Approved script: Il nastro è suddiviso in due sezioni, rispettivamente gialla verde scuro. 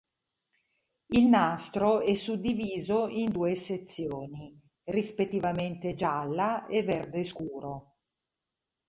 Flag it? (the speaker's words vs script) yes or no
yes